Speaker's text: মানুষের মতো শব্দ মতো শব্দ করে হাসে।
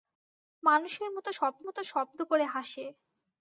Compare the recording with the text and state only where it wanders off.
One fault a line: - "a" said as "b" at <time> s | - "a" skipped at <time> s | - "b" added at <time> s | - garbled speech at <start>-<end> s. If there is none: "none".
none